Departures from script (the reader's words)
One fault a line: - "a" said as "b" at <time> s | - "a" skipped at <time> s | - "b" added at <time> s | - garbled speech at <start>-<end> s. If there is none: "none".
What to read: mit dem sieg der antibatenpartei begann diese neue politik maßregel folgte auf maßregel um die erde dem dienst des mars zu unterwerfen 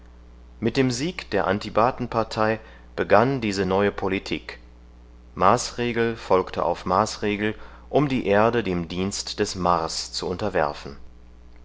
none